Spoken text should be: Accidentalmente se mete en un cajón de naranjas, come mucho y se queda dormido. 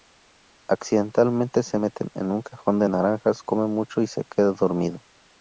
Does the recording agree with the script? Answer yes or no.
yes